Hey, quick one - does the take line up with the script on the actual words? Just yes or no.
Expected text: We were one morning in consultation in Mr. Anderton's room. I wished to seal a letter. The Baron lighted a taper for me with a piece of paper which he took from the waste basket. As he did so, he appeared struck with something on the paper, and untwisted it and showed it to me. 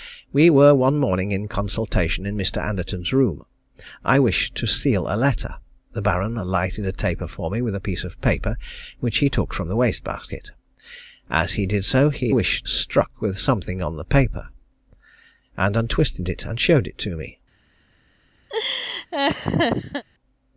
no